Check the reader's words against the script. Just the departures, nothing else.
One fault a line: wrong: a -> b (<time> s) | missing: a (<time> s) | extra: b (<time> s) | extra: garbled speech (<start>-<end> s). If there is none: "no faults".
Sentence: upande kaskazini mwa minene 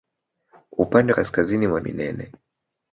no faults